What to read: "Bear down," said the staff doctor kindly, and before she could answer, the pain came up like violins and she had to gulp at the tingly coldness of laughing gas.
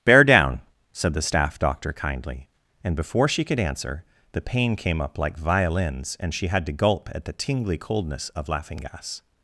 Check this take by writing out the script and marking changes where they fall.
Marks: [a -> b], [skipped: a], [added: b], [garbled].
"Bear down," said the staff doctor kindly, and before she could answer, the pain came up like violins and she had to gulp at the tingly coldness of laughing gas.